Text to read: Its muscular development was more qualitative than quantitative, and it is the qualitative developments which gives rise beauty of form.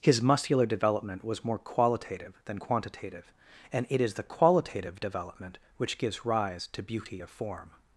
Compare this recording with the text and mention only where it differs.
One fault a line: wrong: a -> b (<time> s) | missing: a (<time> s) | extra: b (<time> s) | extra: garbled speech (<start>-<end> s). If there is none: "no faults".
wrong: Its -> His (0.0 s)
wrong: developments -> development (5.0 s)
extra: to (6.7 s)